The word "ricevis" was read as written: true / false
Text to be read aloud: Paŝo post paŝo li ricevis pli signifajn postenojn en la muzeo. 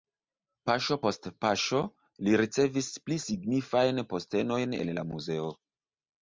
true